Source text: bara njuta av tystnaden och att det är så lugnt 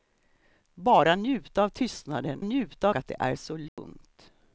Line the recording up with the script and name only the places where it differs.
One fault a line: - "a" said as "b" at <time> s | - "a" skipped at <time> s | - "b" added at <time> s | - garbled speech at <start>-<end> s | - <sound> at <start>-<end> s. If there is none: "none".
- "och" said as "njuta" at 2.4 s
- dropout at 3.7-3.8 s